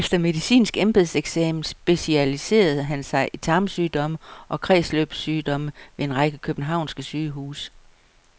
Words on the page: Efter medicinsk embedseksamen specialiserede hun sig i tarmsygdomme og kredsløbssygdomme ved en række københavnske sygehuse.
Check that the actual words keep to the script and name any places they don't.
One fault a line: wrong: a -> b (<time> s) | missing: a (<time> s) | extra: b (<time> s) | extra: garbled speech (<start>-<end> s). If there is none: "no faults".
wrong: hun -> han (2.8 s)